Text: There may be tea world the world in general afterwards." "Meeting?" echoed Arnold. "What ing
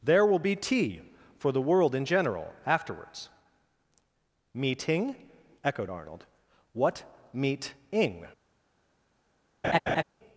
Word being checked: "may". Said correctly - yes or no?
no